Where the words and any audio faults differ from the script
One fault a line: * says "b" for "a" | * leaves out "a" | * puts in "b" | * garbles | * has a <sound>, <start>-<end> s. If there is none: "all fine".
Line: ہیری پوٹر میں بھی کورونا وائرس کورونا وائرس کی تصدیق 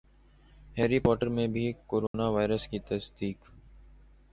* has a dropout, 2.1-2.1 s
* leaves out "کورونا وائرس"